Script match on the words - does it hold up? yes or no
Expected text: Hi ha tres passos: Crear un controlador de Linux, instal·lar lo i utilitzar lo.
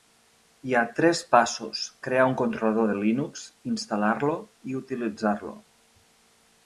yes